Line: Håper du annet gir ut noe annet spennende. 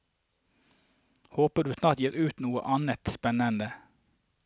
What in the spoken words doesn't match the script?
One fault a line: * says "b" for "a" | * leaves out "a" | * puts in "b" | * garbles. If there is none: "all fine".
* says "snart" for "annet"